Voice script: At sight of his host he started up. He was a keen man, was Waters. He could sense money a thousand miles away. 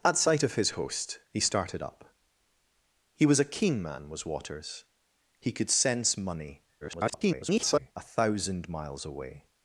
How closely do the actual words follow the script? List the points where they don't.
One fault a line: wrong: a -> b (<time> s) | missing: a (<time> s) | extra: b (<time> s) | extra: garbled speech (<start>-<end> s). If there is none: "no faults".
extra: garbled speech (6.8-7.9 s)